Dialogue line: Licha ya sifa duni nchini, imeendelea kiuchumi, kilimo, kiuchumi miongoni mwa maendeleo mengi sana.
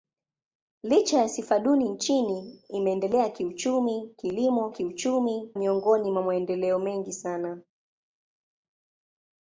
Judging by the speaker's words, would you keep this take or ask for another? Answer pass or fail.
pass